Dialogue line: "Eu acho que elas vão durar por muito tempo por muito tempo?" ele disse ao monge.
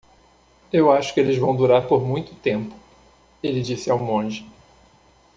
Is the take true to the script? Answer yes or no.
no